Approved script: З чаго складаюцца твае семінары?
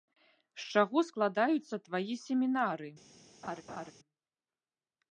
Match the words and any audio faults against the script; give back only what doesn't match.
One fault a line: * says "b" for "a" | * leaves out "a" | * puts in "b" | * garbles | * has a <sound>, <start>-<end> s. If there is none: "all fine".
* has a laugh, 3.4-3.9 s